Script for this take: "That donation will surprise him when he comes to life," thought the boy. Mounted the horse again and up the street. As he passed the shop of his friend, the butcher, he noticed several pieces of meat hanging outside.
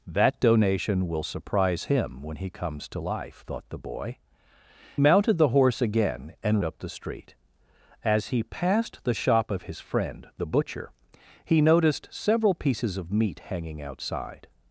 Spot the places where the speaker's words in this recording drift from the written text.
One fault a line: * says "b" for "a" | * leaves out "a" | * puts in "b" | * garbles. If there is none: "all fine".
all fine